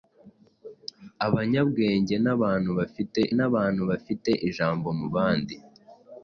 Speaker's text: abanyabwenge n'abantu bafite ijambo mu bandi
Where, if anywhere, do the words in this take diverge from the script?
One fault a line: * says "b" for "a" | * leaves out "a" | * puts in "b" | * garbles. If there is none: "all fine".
* puts in "n'abantu bafite"